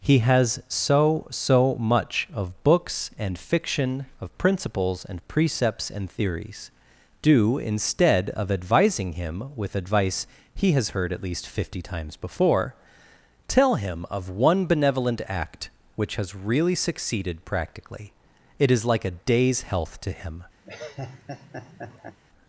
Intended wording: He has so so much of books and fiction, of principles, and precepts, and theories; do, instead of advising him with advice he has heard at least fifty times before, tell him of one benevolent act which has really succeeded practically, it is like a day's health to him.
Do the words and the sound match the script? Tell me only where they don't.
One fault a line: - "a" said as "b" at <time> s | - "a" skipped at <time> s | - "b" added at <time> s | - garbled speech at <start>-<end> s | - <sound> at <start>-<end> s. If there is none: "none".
- laugh at 20.6-22.2 s